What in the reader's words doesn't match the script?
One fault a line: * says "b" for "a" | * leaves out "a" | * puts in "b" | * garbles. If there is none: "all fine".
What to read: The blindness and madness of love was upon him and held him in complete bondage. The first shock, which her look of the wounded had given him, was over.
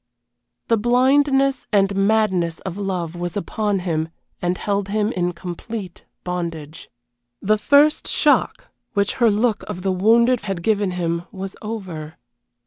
all fine